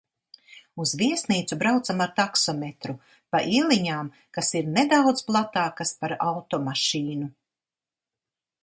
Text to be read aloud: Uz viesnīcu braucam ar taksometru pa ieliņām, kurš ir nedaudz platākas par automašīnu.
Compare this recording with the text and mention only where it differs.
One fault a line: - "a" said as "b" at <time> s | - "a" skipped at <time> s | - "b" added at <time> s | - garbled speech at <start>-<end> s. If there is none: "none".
- "kurš" said as "kas" at 4.4 s